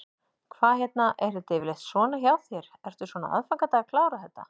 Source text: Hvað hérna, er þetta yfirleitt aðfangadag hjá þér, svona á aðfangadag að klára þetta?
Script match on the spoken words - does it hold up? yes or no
no